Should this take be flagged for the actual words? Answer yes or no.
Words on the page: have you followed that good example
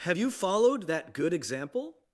no